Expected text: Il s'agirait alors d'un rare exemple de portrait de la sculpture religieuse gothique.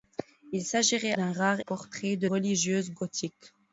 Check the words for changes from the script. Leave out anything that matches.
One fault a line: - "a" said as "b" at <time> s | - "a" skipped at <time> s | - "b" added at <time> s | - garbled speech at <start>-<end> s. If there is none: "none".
- "alors" skipped at 1.1 s
- "exemple de" skipped at 1.6 s
- "la sculpture" skipped at 2.3 s